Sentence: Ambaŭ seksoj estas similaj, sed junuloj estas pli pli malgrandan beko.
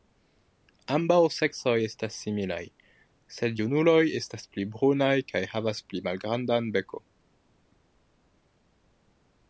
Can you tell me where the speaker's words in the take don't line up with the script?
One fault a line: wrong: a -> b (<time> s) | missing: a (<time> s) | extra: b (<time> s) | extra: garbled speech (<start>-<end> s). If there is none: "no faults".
extra: brunaj kaj havas (4.8 s)